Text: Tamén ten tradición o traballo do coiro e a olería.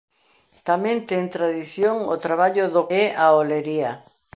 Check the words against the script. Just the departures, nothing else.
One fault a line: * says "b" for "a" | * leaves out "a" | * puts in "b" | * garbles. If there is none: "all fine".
* leaves out "coiro"